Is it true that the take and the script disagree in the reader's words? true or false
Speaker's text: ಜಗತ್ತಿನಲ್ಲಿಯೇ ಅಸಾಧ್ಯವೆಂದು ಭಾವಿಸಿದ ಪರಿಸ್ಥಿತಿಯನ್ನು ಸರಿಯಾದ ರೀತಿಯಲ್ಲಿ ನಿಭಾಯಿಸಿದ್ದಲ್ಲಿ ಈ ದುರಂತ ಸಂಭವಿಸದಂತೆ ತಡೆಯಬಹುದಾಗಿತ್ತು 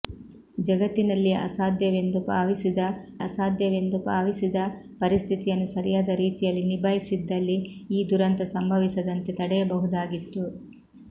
true